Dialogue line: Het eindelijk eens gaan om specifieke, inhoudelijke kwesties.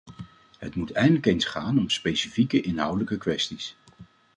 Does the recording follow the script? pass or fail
fail